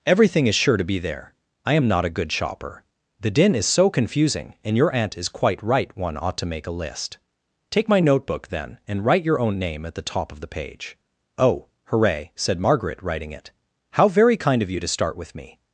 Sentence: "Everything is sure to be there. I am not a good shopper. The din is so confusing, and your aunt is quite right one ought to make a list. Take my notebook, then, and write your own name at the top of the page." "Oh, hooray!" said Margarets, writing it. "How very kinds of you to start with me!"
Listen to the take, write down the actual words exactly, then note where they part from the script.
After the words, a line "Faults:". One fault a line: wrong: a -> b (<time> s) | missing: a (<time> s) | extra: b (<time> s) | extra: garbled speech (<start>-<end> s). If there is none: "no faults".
"Everything is sure to be there. I am not a good shopper. The din is so confusing, and your aunt is quite right one ought to make a list. Take my notebook, then, and write your own name at the top of the page." "Oh, hooray!" said Margaret, writing it. "How very kind of you to start with me!"
Faults:
wrong: Margarets -> Margaret (12.6 s)
wrong: kinds -> kind (14.4 s)